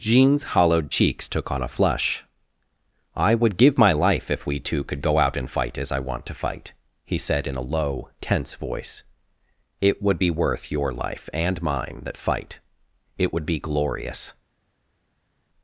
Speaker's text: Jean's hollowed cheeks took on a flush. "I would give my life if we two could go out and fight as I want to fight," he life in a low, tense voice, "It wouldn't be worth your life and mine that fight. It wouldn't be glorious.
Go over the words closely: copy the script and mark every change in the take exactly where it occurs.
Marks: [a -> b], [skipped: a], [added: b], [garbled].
Jean's hollowed cheeks took on a flush. "I would give my life if we two could go out and fight as I want to fight," he [life -> said] in a low, tense voice, "It [wouldn't -> would] be worth your life and mine that fight. It [wouldn't -> would] be glorious.